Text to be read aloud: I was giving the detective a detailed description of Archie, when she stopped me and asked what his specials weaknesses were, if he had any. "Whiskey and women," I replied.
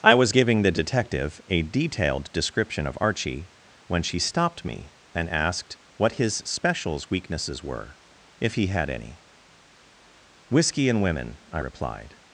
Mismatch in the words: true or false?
false